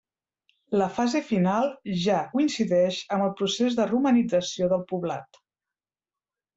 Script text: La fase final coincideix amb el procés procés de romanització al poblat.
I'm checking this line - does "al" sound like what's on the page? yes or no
no